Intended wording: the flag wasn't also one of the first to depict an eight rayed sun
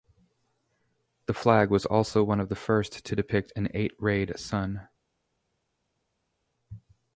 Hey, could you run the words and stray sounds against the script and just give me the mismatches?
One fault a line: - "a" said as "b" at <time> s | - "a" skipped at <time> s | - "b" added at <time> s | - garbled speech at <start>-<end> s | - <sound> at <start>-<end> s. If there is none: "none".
- "wasn't" said as "was" at 1.7 s